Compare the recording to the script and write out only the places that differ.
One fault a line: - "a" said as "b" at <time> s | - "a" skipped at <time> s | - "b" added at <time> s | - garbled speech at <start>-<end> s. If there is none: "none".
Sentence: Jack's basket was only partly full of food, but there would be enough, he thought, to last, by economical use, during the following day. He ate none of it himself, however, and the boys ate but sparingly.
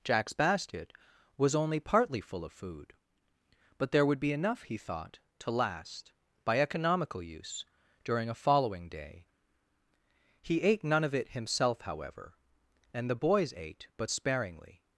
- "the" said as "a" at 8.3 s